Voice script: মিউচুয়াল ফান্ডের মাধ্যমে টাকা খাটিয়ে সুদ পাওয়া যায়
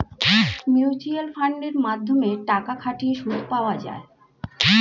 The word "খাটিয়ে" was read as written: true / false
true